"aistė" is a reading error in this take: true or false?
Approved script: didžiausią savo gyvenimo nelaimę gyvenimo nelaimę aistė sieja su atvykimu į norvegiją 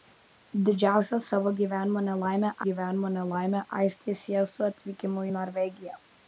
false